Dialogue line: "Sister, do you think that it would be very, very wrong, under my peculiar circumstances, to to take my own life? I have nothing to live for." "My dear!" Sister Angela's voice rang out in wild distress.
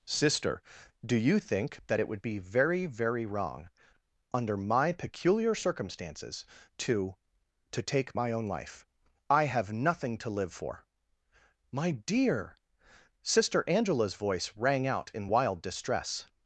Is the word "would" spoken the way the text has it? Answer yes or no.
yes